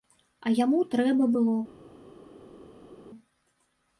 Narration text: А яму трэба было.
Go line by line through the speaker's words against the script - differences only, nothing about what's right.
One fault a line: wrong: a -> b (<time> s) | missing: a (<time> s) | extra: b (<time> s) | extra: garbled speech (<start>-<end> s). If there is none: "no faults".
no faults